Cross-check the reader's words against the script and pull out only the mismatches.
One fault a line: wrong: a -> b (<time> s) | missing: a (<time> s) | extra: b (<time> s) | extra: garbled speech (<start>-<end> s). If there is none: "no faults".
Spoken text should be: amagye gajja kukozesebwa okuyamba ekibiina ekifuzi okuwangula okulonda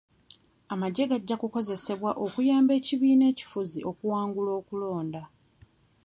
no faults